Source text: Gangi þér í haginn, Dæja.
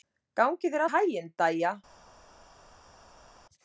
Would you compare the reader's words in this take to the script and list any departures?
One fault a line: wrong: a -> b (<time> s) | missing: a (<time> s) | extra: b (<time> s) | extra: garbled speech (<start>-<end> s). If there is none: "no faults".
no faults